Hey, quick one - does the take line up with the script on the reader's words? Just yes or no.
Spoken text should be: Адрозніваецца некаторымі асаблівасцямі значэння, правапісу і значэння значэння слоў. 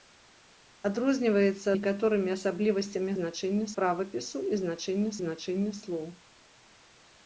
yes